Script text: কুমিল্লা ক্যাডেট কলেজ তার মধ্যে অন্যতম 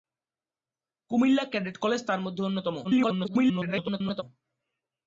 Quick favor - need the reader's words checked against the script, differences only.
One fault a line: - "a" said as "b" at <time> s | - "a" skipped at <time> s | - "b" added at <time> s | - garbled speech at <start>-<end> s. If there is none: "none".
- garbled speech at 2.8-4.2 s